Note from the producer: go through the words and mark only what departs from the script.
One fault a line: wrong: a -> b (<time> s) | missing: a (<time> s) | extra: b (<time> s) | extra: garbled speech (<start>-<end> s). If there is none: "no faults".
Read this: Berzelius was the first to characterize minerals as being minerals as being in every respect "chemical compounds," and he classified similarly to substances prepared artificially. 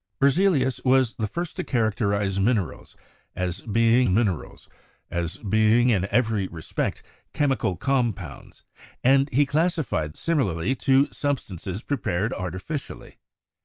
no faults